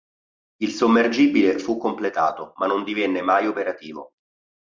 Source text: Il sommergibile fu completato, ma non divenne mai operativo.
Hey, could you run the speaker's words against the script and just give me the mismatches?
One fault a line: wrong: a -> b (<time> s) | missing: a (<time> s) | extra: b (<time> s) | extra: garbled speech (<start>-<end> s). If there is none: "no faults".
no faults